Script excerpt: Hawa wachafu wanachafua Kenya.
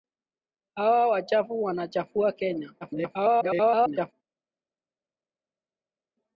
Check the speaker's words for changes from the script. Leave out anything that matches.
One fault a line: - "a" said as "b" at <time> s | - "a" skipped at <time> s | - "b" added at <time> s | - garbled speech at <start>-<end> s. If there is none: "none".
- garbled speech at 2.8-4.1 s